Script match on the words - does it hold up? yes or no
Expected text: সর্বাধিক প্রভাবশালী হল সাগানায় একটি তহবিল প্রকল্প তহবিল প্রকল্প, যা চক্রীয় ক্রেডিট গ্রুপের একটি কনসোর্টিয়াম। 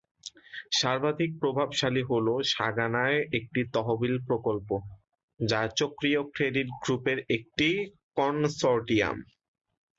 no